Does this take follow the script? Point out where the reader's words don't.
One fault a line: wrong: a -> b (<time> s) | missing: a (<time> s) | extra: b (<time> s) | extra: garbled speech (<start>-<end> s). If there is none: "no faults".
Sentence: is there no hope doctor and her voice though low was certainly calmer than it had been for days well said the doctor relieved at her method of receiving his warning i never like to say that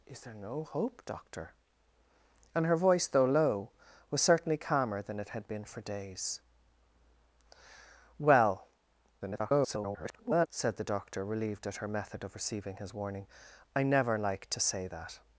extra: garbled speech (9.2-10.5 s)